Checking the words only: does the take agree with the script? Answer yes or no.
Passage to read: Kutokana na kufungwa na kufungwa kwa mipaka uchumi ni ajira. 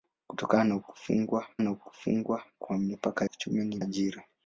yes